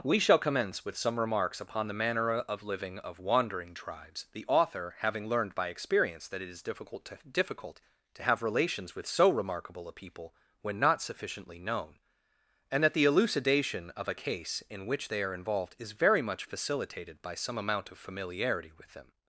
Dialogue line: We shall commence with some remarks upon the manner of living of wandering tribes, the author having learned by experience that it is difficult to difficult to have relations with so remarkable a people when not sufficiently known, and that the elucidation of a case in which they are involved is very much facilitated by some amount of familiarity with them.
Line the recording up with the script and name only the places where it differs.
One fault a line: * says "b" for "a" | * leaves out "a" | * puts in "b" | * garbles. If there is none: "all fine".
all fine